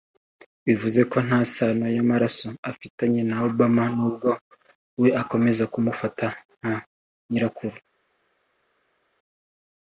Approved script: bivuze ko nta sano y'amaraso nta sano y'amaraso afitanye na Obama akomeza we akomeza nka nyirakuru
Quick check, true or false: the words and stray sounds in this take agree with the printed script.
false